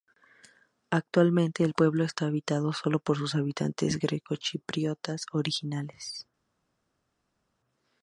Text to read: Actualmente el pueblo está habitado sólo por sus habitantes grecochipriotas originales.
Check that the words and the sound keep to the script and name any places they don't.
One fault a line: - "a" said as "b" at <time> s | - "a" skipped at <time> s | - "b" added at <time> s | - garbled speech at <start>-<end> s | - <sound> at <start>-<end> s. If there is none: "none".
none